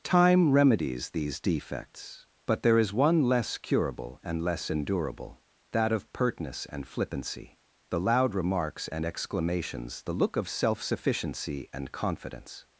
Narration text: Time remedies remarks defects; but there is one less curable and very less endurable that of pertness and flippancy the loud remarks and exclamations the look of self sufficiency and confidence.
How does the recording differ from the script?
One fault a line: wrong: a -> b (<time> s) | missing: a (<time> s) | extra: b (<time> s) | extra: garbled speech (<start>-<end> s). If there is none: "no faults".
wrong: remarks -> these (1.1 s)
missing: very (4.4 s)